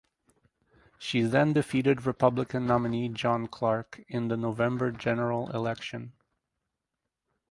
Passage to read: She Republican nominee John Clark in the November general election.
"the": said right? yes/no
yes